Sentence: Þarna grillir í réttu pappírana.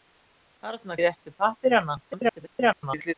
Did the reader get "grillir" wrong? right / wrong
wrong